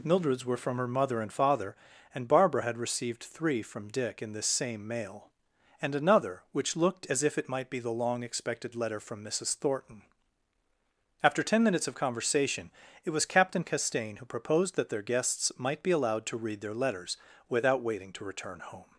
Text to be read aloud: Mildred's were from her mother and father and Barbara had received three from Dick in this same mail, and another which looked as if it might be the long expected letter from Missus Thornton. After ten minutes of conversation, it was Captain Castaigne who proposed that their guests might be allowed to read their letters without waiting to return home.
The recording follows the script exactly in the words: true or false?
true